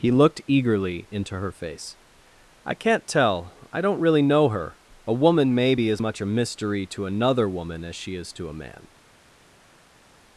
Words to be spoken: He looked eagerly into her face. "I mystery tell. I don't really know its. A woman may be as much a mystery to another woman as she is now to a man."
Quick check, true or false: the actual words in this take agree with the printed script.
false